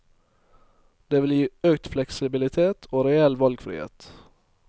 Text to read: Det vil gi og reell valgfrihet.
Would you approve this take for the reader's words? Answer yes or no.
no